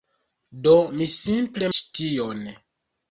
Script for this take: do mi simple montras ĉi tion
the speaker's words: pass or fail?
fail